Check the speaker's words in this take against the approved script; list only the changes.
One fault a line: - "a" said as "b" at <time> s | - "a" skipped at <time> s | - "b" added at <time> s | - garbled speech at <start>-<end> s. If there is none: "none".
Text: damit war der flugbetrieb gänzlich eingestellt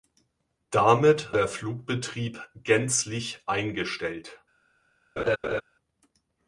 - "war" skipped at 1.3 s